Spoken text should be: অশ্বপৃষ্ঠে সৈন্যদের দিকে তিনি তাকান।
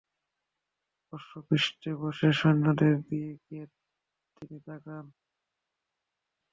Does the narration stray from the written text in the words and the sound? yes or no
yes